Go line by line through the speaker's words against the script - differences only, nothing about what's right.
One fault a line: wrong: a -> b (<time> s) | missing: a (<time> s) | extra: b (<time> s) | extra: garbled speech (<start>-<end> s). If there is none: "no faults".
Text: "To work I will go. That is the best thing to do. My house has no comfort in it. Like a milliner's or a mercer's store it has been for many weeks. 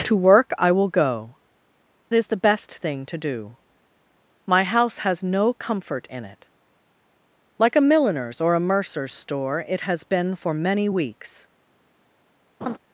missing: That (1.4 s)